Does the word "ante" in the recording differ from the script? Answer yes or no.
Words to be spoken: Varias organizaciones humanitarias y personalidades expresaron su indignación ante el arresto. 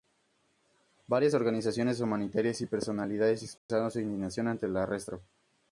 no